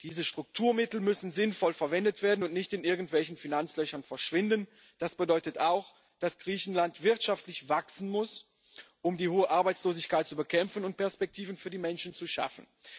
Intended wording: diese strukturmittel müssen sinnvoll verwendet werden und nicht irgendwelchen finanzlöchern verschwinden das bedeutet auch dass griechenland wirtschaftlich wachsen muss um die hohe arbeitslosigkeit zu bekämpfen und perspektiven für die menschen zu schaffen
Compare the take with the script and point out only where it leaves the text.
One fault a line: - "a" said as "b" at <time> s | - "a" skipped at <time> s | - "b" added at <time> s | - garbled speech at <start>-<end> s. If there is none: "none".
- "in" added at 2.7 s